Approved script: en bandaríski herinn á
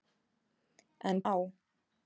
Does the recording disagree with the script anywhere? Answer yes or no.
yes